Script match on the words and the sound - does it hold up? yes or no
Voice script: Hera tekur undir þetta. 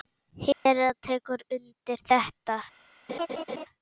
no